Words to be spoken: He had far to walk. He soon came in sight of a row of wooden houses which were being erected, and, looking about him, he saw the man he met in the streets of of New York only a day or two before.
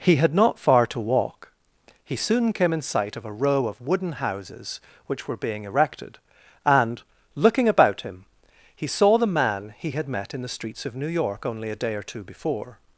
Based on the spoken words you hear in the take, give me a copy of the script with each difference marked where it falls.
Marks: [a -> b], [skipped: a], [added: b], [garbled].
He had [added: not] far to walk. He soon came in sight of a row of wooden houses which were being erected, and, looking about him, he saw the man he [added: had] met in the streets of [skipped: of] New York only a day or two before.